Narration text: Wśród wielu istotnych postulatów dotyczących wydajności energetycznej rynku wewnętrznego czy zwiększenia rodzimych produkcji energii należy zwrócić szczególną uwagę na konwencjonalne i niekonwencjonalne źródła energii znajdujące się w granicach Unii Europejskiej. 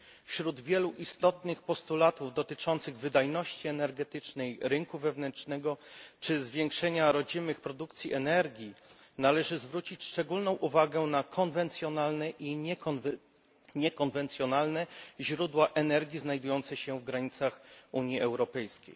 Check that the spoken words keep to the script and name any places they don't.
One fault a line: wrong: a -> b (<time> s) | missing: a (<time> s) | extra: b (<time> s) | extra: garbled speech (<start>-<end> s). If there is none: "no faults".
no faults